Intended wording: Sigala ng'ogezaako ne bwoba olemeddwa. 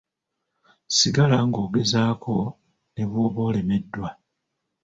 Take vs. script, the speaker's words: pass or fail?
pass